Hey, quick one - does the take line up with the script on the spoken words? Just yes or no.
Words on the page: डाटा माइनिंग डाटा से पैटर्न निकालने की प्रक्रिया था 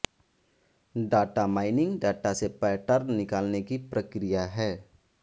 no